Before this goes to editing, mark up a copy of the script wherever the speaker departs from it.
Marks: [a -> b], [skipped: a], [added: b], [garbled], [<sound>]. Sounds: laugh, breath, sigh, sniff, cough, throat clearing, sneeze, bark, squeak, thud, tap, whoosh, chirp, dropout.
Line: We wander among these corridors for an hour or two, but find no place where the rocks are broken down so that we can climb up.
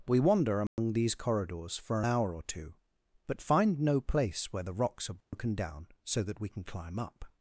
We wander among [dropout] these corridors for an hour or two, but find no place where the rocks are broken [dropout] down so that we can climb up.